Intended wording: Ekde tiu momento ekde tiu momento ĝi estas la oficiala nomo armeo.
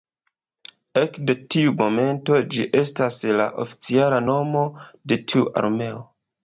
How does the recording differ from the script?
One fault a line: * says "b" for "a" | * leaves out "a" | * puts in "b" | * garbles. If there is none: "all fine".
* leaves out "ekde tiu momento"
* puts in "de tiu"